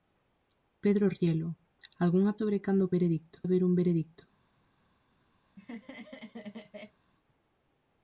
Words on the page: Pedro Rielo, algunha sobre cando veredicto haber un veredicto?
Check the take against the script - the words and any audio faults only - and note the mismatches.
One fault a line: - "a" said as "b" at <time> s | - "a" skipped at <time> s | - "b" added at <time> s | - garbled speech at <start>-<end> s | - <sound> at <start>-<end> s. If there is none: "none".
- laugh at 5.4-7.0 s